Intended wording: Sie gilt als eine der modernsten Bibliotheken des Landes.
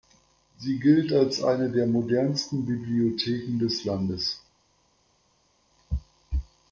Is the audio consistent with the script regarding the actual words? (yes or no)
yes